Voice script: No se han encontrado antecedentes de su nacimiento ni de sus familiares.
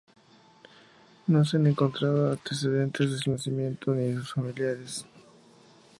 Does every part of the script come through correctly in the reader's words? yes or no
yes